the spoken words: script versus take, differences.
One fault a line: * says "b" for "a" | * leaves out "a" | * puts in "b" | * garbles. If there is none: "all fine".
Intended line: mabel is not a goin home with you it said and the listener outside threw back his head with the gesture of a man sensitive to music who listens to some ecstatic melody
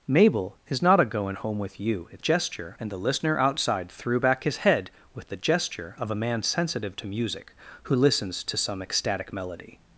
* says "gesture" for "said"